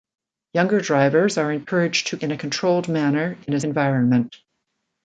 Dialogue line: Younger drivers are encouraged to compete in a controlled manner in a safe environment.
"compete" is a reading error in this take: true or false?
true